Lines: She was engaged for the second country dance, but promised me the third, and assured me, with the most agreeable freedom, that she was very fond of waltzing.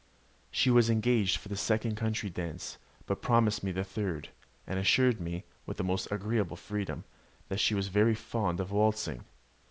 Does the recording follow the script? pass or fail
pass